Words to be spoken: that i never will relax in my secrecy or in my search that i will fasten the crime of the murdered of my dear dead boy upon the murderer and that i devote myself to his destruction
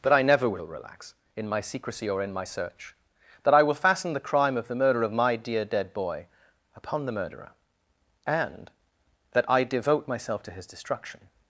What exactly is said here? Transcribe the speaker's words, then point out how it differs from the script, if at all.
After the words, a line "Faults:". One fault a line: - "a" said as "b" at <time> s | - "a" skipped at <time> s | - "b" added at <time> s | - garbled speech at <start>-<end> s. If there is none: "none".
that i never will relax in my secrecy or in my search that i will fasten the crime of the murder of my dear dead boy upon the murderer and that i devote myself to his destruction
Faults:
- "murdered" said as "murder" at 4.8 s